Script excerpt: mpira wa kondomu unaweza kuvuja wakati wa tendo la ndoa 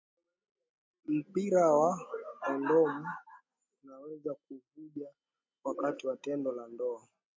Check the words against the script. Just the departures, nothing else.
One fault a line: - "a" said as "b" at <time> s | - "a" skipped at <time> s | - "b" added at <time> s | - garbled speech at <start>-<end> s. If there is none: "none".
none